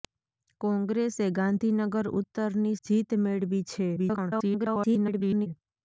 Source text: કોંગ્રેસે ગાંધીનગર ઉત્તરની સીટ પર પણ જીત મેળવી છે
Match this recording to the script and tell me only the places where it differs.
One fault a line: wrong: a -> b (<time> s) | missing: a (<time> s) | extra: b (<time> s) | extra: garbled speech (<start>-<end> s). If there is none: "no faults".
missing: સીટ પર પણ (2.8 s)
extra: garbled speech (3.9-5.5 s)